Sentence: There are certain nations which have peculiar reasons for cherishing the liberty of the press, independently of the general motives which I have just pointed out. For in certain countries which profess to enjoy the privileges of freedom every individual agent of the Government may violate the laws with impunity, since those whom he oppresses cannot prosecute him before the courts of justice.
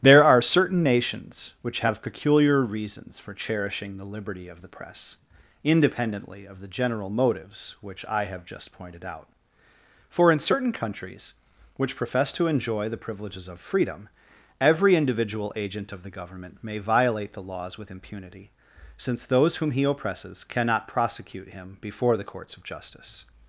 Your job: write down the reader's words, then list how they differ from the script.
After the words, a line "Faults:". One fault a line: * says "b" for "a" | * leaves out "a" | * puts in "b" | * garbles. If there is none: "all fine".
There are certain nations which have peculiar reasons for cherishing the liberty of the press, independently of the general motives which I have just pointed out. For in certain countries which profess to enjoy the privileges of freedom every individual agent of the Government may violate the laws with impunity, since those whom he oppresses cannot prosecute him before the courts of justice.
Faults:
all fine